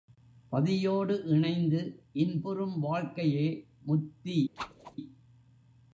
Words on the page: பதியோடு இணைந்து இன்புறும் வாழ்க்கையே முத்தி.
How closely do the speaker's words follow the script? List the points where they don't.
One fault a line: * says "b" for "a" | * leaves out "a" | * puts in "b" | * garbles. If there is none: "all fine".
all fine